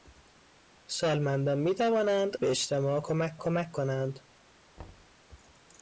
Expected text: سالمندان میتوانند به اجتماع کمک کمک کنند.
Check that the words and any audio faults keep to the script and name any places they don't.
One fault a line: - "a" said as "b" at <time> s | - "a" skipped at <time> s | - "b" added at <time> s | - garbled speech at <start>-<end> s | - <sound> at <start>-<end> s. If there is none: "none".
- thud at 4.8-5.2 s